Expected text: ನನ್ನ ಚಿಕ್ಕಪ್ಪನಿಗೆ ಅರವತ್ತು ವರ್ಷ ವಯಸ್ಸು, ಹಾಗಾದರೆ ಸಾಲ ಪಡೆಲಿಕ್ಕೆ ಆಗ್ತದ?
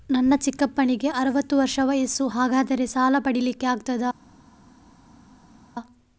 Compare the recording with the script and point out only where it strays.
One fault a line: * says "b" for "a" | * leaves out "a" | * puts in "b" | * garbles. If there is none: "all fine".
all fine